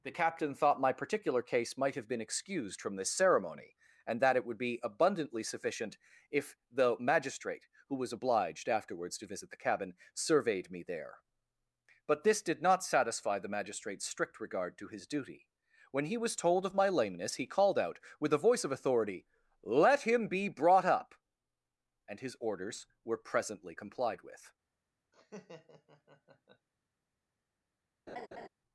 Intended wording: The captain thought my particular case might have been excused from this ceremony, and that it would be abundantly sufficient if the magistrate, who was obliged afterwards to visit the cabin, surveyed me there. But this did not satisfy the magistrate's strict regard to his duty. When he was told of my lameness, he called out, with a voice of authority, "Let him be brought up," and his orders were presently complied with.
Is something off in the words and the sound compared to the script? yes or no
yes